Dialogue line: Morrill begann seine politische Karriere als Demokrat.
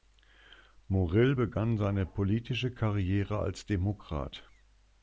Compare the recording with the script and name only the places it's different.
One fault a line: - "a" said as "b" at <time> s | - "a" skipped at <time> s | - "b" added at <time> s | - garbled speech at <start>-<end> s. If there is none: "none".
none